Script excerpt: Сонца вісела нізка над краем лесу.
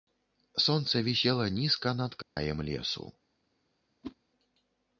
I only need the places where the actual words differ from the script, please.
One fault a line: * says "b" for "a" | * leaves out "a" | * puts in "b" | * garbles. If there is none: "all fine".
all fine